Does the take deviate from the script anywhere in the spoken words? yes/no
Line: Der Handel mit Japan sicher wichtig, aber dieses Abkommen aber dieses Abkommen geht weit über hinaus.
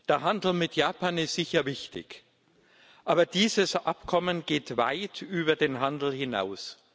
yes